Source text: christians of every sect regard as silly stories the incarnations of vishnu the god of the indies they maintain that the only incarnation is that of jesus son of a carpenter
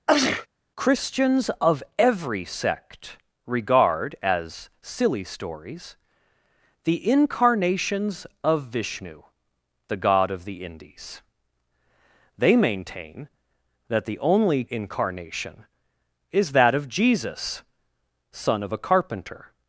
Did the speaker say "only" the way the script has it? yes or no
yes